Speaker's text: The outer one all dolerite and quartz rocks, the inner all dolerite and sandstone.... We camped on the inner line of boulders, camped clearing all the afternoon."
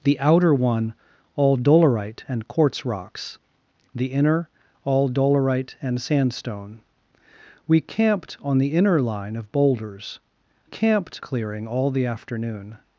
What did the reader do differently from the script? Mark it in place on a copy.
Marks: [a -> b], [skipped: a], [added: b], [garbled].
The outer one all dolerite and quartz rocks, the inner all dolerite and sandstone.... We camped on the inner line of boulders, camped clearing all the afternoon."